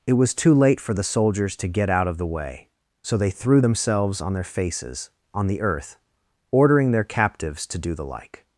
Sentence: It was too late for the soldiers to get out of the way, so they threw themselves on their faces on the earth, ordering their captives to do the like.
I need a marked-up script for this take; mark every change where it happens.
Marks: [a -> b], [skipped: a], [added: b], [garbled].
It was too late for the soldiers to get out of the way, so they threw themselves on their faces on the earth, ordering their captives to do the like.